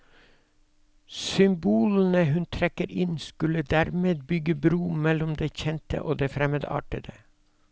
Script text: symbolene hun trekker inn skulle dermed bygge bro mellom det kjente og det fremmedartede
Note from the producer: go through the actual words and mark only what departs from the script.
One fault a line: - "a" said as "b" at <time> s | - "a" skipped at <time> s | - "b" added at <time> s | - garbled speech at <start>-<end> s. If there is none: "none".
none